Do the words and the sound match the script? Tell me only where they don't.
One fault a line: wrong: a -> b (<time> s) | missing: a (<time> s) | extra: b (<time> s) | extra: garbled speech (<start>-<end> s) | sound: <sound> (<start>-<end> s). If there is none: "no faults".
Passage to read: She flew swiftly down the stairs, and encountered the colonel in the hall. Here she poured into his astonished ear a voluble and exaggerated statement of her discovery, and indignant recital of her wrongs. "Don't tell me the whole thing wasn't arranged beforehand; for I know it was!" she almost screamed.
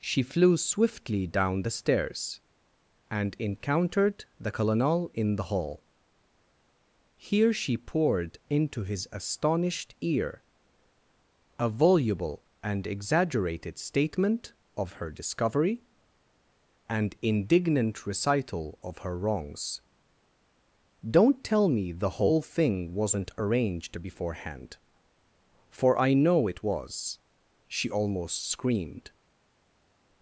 no faults